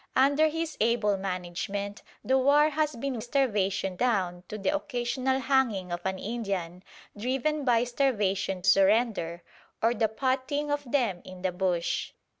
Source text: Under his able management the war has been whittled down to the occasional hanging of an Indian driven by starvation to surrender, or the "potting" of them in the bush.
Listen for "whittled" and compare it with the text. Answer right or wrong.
wrong